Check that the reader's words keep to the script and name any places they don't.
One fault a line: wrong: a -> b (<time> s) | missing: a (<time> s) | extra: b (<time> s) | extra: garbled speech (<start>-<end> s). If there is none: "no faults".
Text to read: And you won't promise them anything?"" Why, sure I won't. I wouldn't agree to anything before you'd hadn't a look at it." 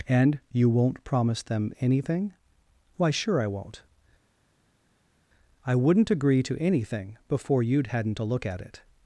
no faults